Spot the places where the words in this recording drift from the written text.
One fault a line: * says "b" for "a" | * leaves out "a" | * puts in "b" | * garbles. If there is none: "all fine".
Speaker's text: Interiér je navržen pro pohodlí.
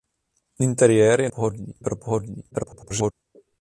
* says "pohodlí" for "navržen"
* garbles